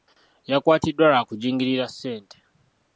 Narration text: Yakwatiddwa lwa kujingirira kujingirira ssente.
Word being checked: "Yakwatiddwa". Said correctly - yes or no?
yes